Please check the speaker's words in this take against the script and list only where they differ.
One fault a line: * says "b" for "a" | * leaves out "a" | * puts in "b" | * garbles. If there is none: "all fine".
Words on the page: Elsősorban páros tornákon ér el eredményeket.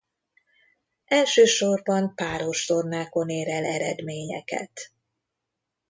all fine